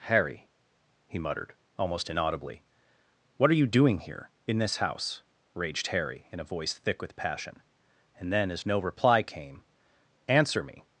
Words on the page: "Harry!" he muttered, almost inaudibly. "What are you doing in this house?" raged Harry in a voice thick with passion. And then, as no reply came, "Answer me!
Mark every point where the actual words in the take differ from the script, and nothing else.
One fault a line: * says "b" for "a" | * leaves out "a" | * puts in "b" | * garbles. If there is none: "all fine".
* puts in "here"